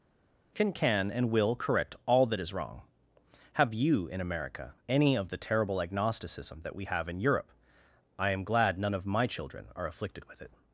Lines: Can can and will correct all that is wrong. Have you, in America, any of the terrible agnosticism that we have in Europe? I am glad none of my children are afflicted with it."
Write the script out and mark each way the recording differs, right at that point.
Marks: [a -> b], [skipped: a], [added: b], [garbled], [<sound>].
Can can and will correct all that is wrong. Have you, in America, any of the terrible agnosticism that we have in Europe? I am glad none of my children are afflicted with it."